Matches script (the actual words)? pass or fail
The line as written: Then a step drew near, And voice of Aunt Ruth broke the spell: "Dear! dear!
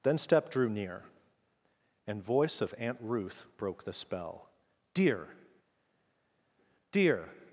fail